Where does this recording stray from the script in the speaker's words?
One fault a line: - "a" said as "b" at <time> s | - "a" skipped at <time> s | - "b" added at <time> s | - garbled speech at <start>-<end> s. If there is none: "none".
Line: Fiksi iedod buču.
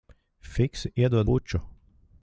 none